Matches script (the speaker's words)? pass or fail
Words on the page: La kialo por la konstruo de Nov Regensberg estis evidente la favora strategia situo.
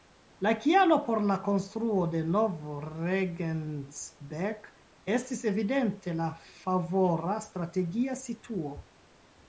pass